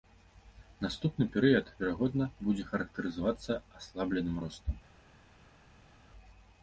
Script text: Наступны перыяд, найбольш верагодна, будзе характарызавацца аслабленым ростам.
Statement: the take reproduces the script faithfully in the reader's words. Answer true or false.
false